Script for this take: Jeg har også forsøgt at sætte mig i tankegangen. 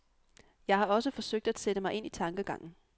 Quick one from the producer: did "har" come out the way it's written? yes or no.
yes